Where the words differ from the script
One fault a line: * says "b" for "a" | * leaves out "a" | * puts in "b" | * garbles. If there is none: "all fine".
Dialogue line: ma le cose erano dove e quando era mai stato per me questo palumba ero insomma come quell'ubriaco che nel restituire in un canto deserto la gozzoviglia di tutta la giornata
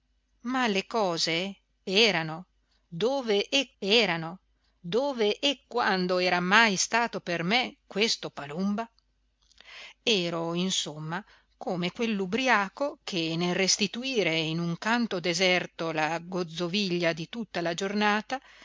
* puts in "erano dove e"